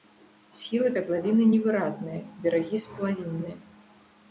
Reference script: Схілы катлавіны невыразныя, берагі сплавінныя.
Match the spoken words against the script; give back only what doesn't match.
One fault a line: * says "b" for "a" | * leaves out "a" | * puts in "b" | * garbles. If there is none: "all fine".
all fine